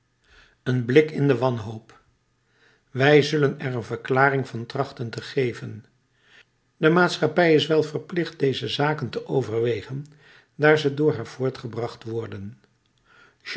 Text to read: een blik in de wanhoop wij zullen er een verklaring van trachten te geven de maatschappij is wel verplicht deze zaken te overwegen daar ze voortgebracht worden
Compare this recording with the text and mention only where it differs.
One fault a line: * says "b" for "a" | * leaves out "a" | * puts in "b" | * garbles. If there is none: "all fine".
* puts in "door haar"